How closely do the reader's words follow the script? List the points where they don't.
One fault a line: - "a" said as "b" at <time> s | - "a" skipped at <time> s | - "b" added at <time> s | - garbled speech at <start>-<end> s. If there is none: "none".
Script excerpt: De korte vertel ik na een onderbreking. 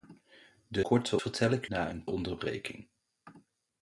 none